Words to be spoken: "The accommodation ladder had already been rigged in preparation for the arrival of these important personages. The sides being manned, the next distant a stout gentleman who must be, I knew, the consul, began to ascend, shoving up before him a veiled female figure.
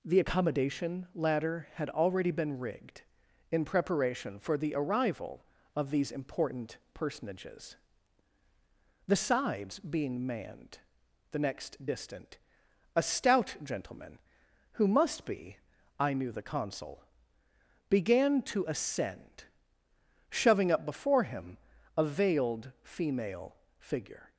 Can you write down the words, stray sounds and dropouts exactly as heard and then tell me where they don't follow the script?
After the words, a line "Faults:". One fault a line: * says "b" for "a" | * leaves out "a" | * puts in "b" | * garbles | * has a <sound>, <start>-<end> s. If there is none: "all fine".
"The accommodation ladder had already been rigged in preparation for the arrival of these important personages. The sides being manned, the next distant a stout gentleman who must be, I knew, the consul, began to ascend, shoving up before him a veiled female figure.
Faults:
all fine